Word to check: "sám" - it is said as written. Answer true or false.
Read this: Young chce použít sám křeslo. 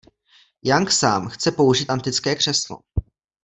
false